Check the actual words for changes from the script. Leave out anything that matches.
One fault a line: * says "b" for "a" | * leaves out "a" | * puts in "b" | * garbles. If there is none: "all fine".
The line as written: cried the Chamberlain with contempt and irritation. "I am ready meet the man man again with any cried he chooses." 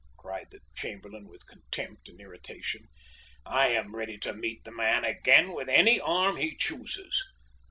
* puts in "to"
* leaves out "man"
* says "arm" for "cried"